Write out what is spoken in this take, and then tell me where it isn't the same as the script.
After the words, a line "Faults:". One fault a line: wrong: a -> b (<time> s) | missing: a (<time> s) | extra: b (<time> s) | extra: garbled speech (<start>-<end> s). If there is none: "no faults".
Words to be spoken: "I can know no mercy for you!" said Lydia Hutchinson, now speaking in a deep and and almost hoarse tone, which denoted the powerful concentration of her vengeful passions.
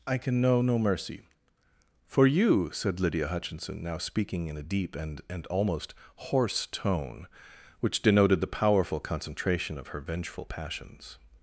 "I can know no mercy for you!" said Lydia Hutchinson, now speaking in a deep and and almost hoarse tone, which denoted the powerful concentration of her vengeful passions.
Faults:
no faults